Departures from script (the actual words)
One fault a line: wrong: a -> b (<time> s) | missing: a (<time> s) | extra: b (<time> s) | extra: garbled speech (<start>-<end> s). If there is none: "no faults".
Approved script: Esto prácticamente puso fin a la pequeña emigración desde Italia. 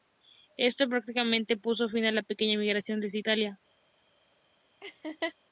no faults